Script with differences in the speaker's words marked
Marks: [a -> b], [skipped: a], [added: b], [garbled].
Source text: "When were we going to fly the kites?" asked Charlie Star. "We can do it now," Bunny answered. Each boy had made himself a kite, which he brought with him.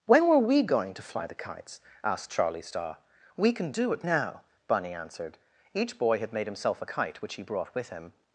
"When were we going to fly the kites?" asked Charlie Star. "We can do it now," Bunny answered. Each boy had made himself a kite, which he brought with him.